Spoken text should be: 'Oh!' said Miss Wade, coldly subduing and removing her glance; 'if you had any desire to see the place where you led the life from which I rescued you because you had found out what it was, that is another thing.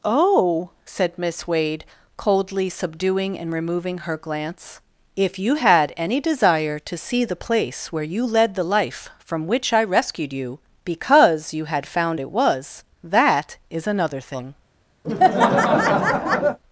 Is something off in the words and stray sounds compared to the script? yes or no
yes